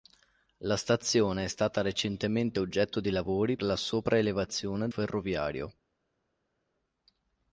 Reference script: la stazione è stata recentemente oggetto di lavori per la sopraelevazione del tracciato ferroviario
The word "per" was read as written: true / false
false